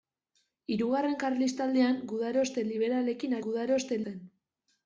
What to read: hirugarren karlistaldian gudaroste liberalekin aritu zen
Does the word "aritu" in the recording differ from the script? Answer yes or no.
yes